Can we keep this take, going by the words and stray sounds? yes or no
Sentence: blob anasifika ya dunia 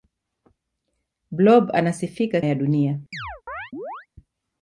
no